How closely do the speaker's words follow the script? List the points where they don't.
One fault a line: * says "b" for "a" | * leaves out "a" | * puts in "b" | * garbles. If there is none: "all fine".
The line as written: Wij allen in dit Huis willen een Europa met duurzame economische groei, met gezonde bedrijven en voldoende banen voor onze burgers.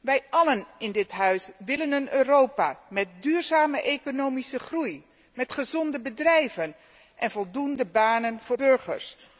* leaves out "onze"